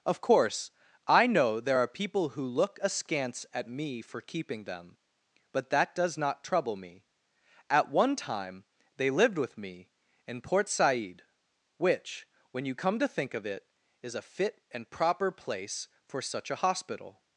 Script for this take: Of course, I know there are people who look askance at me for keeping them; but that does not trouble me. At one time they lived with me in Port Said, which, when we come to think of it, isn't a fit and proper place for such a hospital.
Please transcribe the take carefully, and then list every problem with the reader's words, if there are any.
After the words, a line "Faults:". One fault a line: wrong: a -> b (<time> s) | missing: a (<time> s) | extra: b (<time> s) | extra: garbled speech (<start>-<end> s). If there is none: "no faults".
Of course, I know there are people who look askance at me for keeping them; but that does not trouble me. At one time they lived with me in Port Said, which, when you come to think of it, is a fit and proper place for such a hospital.
Faults:
wrong: we -> you (12.6 s)
wrong: isn't -> is (14.0 s)